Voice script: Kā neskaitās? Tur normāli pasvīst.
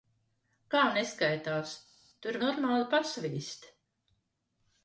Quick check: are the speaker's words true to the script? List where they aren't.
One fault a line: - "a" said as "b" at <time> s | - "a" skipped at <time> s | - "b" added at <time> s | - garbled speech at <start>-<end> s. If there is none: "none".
none